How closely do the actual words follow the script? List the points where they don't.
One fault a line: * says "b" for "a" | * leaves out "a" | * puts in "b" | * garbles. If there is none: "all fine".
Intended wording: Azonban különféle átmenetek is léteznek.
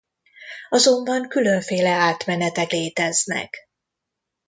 * leaves out "is"